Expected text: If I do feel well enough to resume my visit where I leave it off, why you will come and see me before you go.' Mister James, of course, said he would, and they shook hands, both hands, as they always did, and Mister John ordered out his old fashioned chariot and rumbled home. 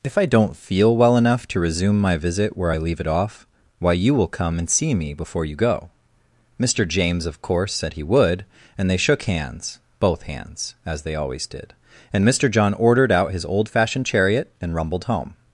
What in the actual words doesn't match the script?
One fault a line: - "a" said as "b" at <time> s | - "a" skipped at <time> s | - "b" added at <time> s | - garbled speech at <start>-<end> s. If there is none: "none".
- "do" said as "don't" at 0.2 s